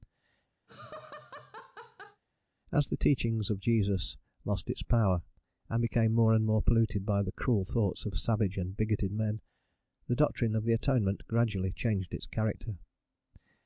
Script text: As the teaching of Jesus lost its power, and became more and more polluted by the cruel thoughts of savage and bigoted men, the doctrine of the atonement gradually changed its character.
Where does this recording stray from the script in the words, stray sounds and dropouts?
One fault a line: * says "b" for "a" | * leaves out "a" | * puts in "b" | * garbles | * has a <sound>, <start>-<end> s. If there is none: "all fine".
* has a laugh, 0.7-2.2 s